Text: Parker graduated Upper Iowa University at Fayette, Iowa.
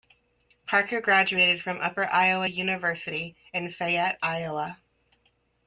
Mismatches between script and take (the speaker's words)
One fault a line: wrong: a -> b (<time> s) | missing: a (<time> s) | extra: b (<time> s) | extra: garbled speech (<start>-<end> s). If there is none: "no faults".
extra: from (1.6 s)
wrong: at -> in (3.5 s)